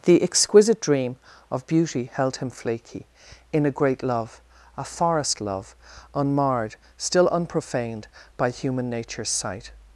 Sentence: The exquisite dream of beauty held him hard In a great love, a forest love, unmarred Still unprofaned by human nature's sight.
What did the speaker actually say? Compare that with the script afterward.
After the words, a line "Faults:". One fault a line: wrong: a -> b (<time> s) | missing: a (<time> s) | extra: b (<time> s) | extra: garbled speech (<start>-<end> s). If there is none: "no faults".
The exquisite dream of beauty held him flaky In a great love, a forest love, unmarred Still unprofaned by human nature's sight.
Faults:
wrong: hard -> flaky (2.5 s)